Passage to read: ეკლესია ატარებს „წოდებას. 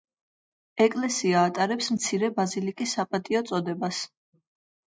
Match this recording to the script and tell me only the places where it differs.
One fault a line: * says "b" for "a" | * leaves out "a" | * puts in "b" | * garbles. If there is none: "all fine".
* puts in "მცირე ბაზილიკის საპატიო"